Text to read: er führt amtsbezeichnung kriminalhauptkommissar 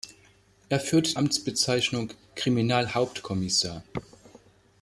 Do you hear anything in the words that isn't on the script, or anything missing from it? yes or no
no